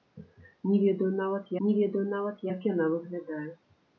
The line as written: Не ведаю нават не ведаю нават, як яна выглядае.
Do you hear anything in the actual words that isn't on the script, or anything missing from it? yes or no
no